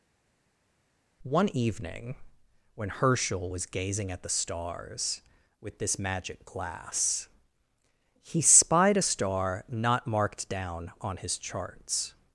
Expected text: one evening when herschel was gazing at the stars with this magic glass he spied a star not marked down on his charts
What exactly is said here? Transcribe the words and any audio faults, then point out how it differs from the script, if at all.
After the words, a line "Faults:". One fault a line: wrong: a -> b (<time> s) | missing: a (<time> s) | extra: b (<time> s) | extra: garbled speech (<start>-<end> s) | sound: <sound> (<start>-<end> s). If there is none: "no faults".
one evening when herschel was gazing at the stars with this magic glass he spied a star not marked down on his charts
Faults:
no faults